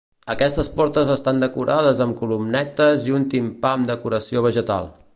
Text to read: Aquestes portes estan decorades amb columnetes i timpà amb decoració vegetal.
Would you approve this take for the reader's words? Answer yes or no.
no